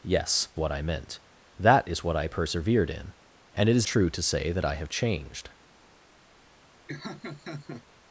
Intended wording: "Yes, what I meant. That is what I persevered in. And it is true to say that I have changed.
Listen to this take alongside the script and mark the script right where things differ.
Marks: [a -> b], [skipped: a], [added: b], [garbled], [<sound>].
"Yes, what I meant. That is what I persevered in. And it is true to say that I have changed. [laugh]